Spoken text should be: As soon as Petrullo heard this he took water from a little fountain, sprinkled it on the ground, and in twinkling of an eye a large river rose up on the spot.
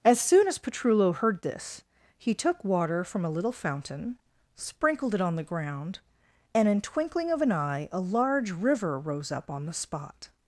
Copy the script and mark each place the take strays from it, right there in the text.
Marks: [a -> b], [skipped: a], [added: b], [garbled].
As soon as Petrullo heard this he took water from a little fountain, sprinkled it on the ground, and in twinkling of an eye a large river rose up on the spot.